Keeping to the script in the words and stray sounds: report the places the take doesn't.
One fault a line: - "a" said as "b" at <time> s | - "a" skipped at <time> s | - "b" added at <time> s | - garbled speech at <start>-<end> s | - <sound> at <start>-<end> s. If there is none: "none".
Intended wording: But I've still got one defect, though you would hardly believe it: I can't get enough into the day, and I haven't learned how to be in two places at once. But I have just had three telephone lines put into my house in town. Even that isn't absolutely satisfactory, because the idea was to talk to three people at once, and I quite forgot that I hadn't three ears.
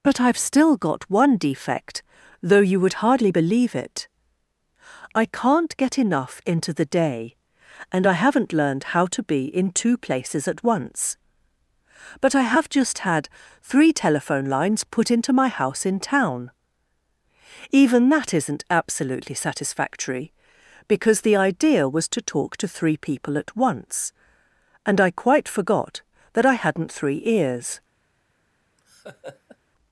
- laugh at 28.8-29.6 s